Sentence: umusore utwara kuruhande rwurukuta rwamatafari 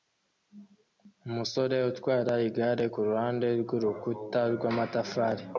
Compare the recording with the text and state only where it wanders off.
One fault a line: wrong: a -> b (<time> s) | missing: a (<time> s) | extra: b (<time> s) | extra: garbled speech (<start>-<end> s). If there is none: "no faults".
extra: igare (2.5 s)